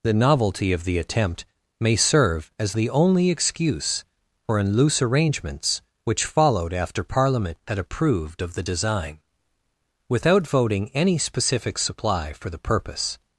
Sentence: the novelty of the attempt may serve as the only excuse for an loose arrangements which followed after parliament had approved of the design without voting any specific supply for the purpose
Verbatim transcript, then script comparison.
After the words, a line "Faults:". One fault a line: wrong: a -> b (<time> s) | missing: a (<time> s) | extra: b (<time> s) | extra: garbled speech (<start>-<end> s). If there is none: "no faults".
the novelty of the attempt may serve as the only excuse for an loose arrangements which followed after parliament had approved of the design without voting any specific supply for the purpose
Faults:
no faults